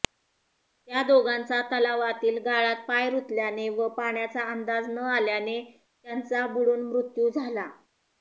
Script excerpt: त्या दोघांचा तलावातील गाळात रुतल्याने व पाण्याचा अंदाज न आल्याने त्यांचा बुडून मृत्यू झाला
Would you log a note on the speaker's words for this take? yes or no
yes